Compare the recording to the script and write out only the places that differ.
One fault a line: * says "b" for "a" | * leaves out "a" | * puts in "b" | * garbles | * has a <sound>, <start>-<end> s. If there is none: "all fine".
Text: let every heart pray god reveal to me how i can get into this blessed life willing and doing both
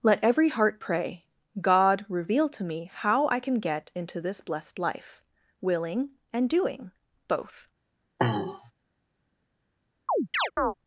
* has a throat clearing, 8.2-8.7 s
* has a chirp, 10.1-10.7 s